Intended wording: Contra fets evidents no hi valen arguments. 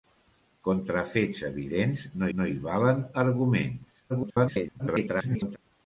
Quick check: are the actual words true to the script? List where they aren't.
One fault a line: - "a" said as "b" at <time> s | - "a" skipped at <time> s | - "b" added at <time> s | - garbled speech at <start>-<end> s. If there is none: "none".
- "no" added at 2.4 s
- garbled speech at 4.1-5.6 s